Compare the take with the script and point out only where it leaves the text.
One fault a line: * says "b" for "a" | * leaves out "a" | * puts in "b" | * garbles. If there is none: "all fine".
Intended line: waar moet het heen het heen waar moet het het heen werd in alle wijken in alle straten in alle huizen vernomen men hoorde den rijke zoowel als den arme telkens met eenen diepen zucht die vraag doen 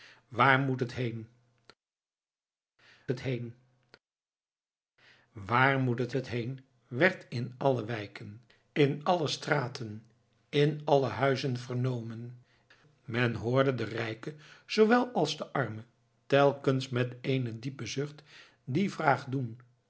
all fine